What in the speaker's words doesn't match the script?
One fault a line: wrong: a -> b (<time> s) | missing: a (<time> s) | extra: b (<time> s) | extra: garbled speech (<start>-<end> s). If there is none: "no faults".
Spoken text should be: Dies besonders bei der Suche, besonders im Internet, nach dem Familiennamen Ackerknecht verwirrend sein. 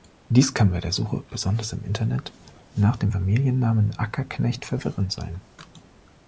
wrong: besonders -> kann (0.6 s)